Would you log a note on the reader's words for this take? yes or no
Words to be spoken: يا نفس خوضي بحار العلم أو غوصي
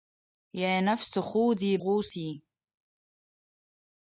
yes